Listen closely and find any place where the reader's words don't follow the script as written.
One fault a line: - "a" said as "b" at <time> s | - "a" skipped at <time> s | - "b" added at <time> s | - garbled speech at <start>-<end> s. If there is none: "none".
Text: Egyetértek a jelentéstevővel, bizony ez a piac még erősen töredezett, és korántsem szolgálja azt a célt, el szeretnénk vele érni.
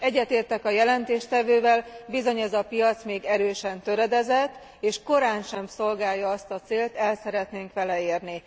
none